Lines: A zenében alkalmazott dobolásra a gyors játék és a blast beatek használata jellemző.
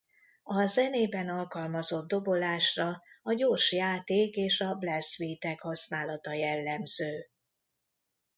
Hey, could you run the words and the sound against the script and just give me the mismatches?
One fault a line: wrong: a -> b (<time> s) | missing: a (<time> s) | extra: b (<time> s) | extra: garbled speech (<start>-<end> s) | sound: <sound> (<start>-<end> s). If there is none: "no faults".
no faults